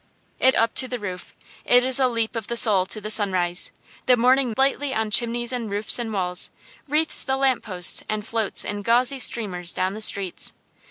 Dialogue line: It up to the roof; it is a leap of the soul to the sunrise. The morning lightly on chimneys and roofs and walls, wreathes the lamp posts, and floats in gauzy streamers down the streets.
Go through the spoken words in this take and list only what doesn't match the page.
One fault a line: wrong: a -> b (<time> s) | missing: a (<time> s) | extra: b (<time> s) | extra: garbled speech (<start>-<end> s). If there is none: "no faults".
no faults